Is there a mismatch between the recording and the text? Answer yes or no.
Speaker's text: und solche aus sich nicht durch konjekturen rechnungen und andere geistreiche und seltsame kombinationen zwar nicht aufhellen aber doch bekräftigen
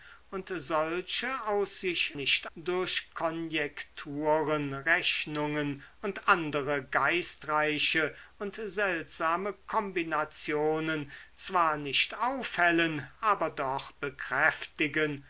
no